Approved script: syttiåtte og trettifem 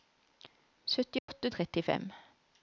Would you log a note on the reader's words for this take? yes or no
no